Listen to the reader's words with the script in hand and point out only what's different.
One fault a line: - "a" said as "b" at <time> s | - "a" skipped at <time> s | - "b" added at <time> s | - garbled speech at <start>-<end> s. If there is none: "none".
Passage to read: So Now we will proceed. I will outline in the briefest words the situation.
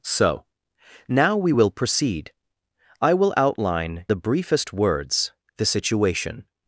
- "in" skipped at 4.1 s